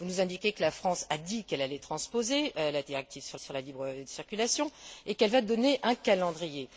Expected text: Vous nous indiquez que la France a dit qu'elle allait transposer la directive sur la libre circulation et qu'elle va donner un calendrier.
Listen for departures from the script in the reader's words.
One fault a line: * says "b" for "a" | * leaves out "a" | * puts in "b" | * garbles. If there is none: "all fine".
* puts in "sur"